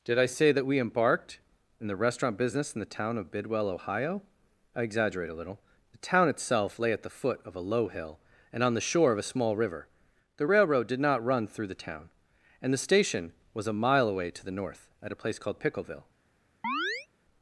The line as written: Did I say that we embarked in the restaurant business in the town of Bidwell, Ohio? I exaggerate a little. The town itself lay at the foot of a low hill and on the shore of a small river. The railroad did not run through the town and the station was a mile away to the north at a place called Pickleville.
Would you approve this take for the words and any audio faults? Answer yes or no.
no